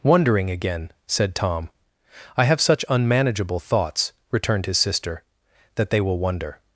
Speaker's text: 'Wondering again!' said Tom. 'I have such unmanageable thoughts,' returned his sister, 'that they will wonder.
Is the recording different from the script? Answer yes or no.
no